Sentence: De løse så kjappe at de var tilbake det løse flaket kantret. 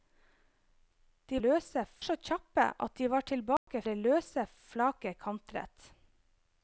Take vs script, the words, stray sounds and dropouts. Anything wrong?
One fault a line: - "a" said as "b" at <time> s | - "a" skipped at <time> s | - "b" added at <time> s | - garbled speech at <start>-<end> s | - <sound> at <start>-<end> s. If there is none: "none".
- dropout at 3.6-3.7 s